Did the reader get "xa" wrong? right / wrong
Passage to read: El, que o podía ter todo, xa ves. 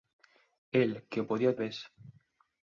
wrong